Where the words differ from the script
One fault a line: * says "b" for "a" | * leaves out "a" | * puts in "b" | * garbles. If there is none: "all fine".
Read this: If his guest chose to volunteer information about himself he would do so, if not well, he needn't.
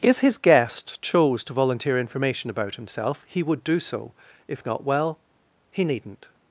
all fine